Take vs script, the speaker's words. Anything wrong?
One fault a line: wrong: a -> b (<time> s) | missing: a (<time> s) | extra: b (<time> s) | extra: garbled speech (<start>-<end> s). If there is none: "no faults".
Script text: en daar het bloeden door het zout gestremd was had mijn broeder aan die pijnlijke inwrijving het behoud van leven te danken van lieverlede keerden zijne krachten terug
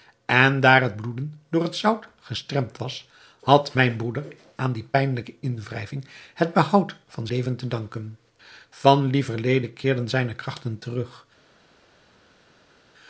no faults